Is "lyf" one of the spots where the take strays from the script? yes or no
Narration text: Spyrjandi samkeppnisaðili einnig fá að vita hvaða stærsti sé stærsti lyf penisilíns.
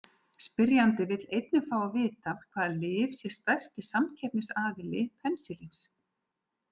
yes